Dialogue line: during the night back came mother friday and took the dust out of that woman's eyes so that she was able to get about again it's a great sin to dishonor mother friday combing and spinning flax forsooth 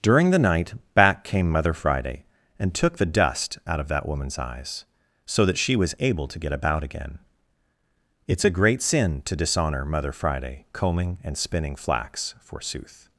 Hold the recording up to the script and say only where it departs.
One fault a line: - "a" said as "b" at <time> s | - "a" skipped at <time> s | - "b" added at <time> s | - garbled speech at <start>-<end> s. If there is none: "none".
none